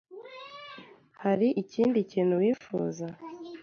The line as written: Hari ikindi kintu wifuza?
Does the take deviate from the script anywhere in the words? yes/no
no